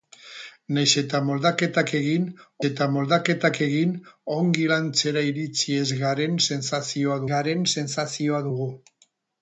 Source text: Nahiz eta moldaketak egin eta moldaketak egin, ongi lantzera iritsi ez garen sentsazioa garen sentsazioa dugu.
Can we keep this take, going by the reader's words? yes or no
yes